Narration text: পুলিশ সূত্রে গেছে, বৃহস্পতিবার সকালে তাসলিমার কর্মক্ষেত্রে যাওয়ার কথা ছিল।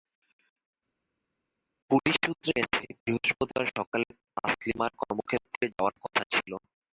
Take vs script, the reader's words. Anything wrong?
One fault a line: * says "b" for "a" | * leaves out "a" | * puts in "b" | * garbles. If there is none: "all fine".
all fine